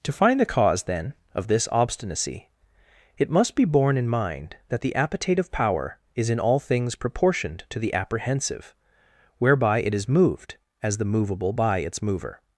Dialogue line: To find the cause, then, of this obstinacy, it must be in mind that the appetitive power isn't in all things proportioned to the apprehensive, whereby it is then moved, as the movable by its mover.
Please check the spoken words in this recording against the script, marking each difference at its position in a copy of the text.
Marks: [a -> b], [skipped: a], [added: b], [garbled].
To find the cause, then, of this obstinacy, it must be [added: borne] in mind that the appetitive power [isn't -> is] in all things proportioned to the apprehensive, whereby it is [skipped: then] moved, as the movable by its mover.